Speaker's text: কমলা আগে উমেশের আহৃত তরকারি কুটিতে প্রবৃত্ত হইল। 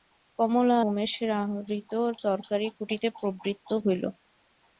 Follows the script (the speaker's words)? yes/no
no